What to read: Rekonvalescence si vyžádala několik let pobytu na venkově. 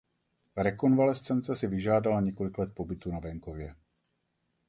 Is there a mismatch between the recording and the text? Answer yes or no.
no